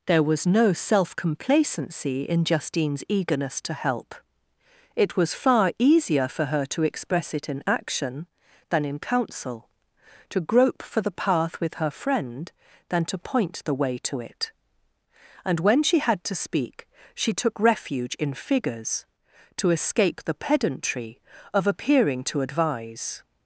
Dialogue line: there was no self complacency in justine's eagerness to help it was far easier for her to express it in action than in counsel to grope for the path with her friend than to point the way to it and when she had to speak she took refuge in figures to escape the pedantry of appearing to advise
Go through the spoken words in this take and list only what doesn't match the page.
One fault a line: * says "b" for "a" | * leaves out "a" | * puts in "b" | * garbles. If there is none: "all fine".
all fine